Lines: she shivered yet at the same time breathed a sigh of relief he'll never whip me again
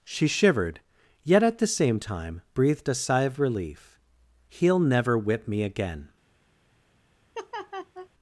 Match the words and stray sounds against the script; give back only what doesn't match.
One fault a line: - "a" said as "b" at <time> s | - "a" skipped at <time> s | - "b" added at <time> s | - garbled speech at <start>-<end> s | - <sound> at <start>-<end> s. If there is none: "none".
- laugh at 7.3-8.1 s